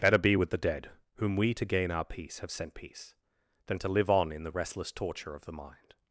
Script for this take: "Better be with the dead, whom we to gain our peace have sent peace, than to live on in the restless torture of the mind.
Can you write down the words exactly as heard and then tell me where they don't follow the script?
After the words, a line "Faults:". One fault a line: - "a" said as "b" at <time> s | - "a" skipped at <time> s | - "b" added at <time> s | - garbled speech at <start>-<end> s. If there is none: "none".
"Better be with the dead, whom we to gain our peace have sent peace, than to live on in the restless torture of the mind.
Faults:
none